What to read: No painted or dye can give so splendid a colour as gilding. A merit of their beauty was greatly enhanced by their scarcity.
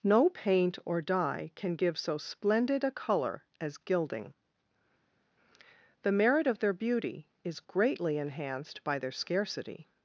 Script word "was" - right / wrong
wrong